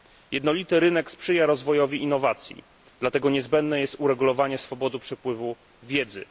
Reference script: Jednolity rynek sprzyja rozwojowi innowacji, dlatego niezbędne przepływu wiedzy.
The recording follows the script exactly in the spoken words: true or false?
false